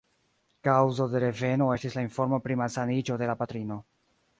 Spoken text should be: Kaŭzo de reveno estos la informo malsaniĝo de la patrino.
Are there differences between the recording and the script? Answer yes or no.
yes